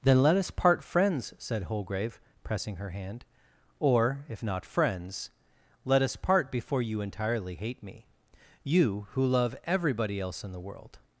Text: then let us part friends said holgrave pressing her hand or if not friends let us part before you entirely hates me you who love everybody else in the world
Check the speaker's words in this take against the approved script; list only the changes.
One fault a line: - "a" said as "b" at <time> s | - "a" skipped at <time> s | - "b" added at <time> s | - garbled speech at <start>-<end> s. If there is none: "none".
- "hates" said as "hate" at 7.5 s